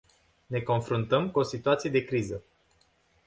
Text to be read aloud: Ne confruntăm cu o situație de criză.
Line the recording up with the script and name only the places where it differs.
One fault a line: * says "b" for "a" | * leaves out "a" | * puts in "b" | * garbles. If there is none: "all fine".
all fine